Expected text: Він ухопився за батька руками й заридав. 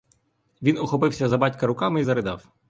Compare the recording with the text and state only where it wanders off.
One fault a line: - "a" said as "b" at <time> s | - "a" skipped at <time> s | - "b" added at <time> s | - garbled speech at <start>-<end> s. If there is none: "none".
none